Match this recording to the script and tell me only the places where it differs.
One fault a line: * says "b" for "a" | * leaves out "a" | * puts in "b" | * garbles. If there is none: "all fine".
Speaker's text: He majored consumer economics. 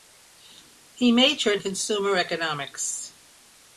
all fine